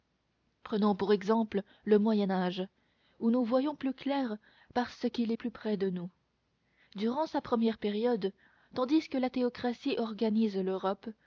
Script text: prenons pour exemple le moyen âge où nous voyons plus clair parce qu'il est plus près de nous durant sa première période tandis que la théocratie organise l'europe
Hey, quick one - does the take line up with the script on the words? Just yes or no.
yes